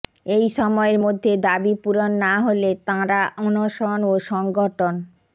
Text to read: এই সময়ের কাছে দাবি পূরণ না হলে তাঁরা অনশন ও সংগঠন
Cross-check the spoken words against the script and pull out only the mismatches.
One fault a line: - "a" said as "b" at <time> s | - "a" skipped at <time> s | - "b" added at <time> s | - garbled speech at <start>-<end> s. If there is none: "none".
- "কাছে" said as "মধ্যে" at 1.0 s